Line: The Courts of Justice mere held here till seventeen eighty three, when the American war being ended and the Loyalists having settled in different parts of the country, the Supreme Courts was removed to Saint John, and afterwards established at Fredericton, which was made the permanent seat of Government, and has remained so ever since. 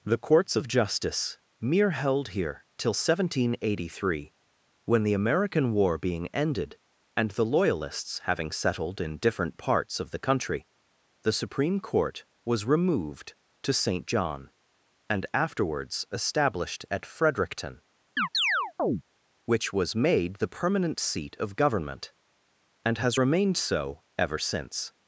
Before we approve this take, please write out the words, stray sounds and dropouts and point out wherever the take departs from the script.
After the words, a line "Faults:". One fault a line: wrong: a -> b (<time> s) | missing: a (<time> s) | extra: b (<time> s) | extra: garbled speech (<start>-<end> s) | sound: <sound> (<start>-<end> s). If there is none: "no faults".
The Courts of Justice mere held here till seventeen eighty three, when the American war being ended and the Loyalists having settled in different parts of the country, the Supreme Court was removed to Saint John, and afterwards established at Fredericton, which was made the permanent seat of Government, and has remained so ever since.
Faults:
wrong: Courts -> Court (11.8 s)
sound: chirp (18.2-19.0 s)